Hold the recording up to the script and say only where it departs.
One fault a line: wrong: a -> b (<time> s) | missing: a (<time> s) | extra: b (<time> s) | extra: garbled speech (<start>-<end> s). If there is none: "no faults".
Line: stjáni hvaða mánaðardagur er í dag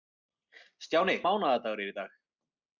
missing: hvaða (1.1 s)